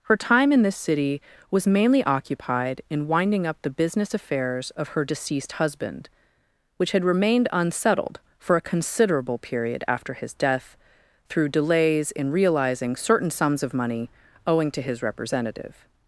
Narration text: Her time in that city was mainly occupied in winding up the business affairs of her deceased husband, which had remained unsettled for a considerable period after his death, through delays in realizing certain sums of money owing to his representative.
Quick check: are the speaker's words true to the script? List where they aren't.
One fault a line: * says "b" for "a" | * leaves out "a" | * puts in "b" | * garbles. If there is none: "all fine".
* says "this" for "that"